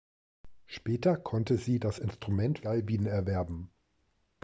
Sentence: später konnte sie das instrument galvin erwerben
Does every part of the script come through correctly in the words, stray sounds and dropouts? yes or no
yes